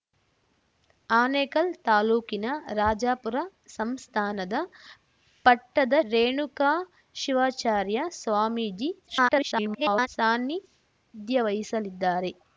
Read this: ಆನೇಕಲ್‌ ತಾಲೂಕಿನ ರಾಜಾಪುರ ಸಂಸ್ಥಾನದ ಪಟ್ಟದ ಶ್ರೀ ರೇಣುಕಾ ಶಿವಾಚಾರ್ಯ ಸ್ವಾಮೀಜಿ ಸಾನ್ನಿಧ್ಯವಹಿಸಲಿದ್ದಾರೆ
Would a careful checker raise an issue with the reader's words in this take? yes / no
yes